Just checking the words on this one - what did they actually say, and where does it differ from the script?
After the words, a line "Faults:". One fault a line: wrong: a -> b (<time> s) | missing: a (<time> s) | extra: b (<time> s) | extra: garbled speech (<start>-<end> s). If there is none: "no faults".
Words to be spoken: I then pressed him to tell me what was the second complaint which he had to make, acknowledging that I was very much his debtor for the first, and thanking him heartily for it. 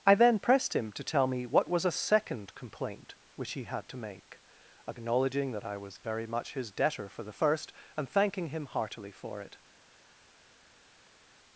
I then pressed him to tell me what was a second complaint which he had to make, acknowledging that I was very much his debtor for the first, and thanking him heartily for it.
Faults:
wrong: the -> a (1.9 s)